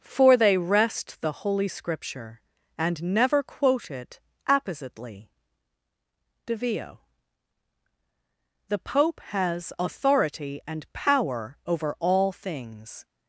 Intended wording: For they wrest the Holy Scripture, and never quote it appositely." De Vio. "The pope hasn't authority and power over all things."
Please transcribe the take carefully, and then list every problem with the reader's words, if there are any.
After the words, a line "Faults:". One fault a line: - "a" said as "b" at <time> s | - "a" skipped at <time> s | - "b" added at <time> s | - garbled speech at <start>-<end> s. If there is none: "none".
For they wrest the Holy Scripture, and never quote it appositely." De Vio. "The pope has authority and power over all things."
Faults:
- "hasn't" said as "has" at 9.2 s